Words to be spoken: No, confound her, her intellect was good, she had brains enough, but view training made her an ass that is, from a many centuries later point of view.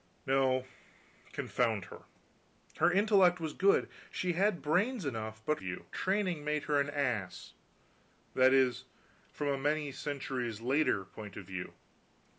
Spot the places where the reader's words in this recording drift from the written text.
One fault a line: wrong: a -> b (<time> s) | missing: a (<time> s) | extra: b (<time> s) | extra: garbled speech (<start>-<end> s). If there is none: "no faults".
no faults